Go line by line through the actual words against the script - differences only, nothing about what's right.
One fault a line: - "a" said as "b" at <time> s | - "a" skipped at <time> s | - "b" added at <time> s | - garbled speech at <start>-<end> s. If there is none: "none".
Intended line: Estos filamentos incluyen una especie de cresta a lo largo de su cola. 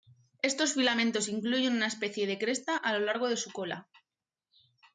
none